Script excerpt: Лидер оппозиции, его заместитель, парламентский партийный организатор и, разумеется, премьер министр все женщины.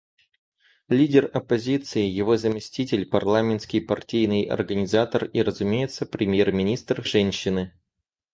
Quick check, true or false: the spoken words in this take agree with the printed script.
false